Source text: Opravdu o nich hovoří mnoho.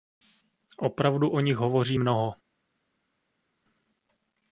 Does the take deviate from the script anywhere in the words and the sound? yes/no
no